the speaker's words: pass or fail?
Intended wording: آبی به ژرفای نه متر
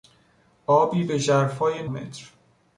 fail